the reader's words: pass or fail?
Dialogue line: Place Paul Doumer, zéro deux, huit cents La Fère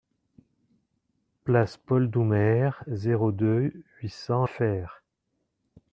fail